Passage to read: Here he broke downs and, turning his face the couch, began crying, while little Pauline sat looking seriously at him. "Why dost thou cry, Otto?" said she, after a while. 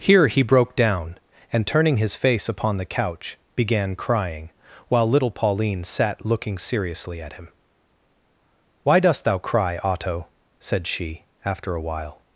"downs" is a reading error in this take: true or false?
true